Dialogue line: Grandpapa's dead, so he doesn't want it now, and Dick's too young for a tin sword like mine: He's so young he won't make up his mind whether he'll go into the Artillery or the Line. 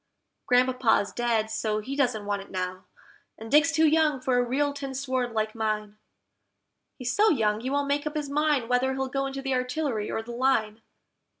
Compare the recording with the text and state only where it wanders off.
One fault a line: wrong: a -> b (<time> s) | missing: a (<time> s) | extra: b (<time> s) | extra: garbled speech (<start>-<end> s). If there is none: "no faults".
extra: real (4.4 s)